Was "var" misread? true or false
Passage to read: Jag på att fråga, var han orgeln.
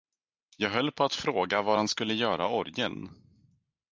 false